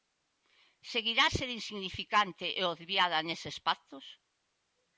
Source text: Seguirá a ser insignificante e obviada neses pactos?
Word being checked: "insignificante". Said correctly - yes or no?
yes